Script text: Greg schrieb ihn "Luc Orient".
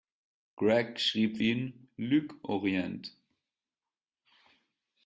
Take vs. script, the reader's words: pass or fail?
pass